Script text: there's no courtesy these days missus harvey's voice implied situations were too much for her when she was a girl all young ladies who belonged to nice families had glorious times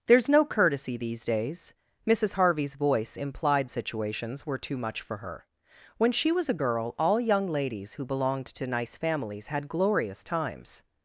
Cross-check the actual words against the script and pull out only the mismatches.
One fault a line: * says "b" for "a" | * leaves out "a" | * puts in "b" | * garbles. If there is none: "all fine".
all fine